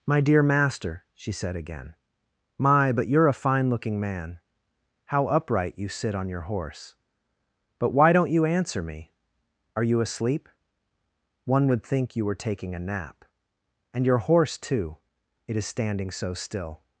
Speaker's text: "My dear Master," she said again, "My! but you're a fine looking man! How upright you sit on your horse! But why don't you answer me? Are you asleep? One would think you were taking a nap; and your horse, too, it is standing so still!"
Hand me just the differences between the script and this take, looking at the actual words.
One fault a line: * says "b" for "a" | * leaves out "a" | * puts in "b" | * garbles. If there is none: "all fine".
all fine